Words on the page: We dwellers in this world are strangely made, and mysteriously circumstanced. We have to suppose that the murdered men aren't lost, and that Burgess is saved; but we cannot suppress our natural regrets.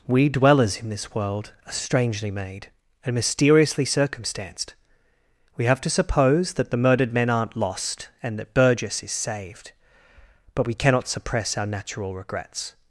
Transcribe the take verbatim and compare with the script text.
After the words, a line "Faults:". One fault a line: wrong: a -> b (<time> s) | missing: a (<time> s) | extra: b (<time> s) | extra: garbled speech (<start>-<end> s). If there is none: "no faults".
We dwellers in this world are strangely made, and mysteriously circumstanced. We have to suppose that the murdered men aren't lost, and that Burgess is saved; but we cannot suppress our natural regrets.
Faults:
no faults